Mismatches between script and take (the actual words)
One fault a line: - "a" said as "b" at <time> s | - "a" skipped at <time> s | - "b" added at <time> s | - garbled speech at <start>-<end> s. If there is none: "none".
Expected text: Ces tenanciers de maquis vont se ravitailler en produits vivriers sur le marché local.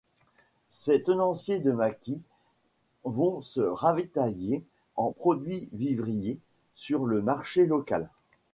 none